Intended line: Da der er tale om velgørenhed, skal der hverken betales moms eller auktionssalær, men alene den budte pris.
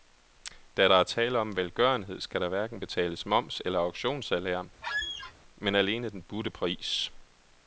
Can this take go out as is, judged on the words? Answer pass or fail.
pass